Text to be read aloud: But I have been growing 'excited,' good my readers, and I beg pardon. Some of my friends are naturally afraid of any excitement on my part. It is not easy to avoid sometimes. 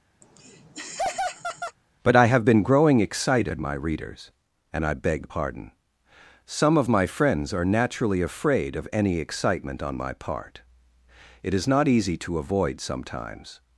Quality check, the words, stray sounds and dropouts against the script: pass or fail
fail